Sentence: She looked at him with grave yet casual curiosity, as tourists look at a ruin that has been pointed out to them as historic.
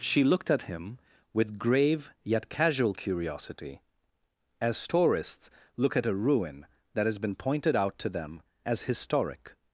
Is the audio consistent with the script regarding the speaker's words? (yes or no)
yes